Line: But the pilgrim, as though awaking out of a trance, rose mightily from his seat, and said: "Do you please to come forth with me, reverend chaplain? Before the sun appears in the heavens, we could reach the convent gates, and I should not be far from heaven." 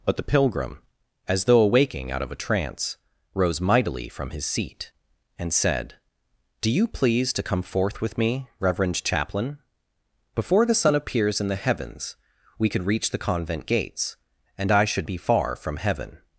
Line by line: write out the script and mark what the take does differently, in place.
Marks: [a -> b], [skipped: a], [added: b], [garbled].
But the pilgrim, as though awaking out of a trance, rose mightily from his seat, and said: "Do you please to come forth with me, reverend chaplain? Before the sun appears in the heavens, we could reach the convent gates, and I should [skipped: not] be far from heaven."